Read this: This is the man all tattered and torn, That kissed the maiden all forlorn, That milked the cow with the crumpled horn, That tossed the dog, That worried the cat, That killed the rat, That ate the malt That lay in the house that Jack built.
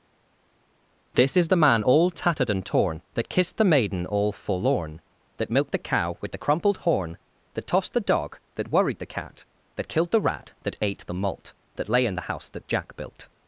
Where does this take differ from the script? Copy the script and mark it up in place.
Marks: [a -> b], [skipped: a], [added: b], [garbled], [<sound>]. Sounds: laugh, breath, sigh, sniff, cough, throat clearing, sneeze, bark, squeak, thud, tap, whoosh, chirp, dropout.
This is the man all tattered and torn, That kissed the maiden all forlorn, That milked the cow with the crumpled horn, That tossed the dog, That worried the cat, That killed the rat, That ate the malt That lay in the house that Jack built.